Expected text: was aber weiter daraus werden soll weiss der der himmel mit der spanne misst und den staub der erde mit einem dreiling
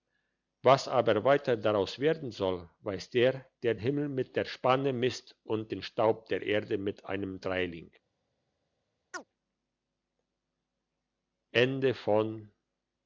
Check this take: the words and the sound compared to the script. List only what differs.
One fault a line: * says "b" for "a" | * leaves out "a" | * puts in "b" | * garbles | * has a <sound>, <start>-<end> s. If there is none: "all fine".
* has a chirp, 9.1-9.2 s